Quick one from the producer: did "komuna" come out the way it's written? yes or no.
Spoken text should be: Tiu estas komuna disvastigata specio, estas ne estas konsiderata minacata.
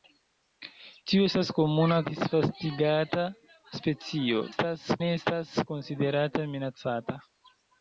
yes